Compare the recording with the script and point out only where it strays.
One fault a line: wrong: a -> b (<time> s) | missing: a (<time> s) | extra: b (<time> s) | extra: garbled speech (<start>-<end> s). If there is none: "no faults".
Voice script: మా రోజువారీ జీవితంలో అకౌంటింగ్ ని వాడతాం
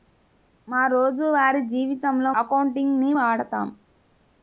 no faults